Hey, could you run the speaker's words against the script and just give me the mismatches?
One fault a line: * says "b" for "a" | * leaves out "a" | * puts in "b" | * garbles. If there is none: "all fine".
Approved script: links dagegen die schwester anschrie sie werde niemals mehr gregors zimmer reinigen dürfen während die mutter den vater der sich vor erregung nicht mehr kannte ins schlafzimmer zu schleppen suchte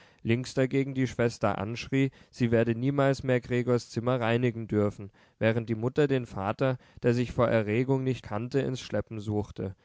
* leaves out "mehr"
* leaves out "schlafzimmer zu"